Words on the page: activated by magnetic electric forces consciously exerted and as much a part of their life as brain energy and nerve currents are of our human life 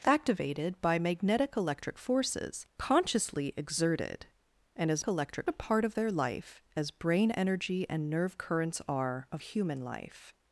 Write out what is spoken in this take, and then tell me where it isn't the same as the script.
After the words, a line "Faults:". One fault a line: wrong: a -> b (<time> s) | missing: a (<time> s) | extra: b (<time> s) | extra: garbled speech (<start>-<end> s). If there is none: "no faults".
activated by magnetic electric forces consciously exerted and as electric a part of their life as brain energy and nerve currents are of human life
Faults:
wrong: much -> electric (5.1 s)
missing: our (9.4 s)